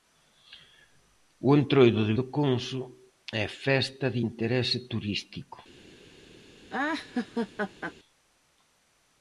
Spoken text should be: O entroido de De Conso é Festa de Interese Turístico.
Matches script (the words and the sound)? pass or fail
fail